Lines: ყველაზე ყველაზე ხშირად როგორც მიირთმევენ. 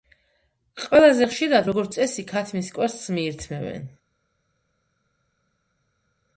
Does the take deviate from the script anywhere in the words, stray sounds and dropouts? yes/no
yes